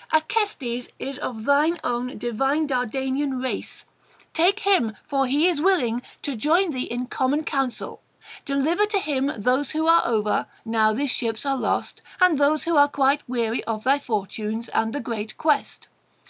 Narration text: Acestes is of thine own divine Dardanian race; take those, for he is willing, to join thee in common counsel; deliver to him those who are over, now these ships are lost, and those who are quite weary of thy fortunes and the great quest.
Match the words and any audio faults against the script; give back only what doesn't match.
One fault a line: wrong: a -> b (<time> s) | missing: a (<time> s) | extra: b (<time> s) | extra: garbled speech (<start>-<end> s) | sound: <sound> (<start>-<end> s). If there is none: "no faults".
wrong: those -> him (4.6 s)